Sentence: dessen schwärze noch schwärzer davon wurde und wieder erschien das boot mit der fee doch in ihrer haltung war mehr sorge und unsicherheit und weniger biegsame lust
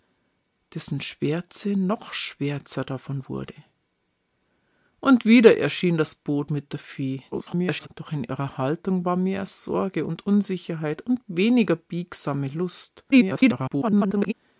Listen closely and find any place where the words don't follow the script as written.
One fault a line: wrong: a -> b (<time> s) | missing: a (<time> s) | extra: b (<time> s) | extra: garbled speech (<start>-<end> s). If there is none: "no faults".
extra: garbled speech (7.3-7.9 s)
extra: garbled speech (13.1-14.3 s)